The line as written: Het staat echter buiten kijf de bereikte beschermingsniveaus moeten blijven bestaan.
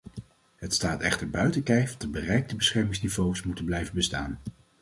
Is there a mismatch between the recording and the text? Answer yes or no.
no